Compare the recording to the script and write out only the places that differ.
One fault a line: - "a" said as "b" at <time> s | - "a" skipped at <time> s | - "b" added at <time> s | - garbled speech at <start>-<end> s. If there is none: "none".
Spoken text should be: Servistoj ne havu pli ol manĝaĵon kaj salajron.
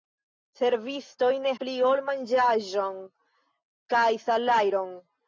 - "havu" skipped at 1.5 s